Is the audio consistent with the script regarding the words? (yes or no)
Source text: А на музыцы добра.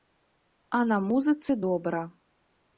yes